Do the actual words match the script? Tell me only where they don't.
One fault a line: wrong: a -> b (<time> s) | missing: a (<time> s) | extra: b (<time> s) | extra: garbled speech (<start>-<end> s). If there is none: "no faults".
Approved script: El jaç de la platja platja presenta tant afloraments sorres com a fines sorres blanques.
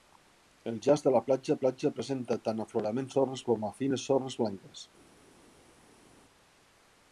no faults